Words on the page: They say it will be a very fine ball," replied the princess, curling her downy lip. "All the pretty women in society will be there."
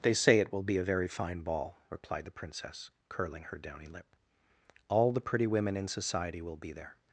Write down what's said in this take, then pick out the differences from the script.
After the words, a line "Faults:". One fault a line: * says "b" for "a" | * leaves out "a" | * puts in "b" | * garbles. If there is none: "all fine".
They say it will be a very fine ball," replied the princess, curling her downy lip. "All the pretty women in society will be there."
Faults:
all fine